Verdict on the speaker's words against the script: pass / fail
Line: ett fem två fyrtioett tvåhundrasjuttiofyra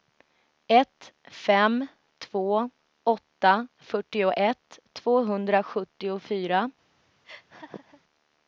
fail